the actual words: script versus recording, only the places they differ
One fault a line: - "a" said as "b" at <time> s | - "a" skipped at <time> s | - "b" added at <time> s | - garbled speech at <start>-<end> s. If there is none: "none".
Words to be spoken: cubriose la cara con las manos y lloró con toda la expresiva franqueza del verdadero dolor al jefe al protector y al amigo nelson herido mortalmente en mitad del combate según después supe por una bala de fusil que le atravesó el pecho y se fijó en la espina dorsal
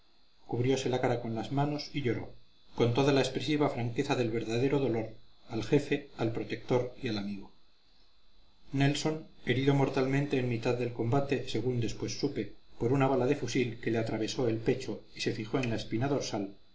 none